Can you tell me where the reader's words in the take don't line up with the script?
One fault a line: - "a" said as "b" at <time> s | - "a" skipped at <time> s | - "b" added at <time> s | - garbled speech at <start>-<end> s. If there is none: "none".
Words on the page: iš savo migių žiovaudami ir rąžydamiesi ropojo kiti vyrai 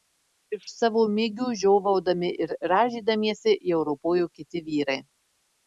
- "jau" added at 3.8 s